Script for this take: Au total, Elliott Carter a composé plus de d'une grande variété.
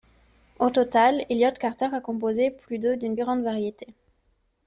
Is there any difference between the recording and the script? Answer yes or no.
no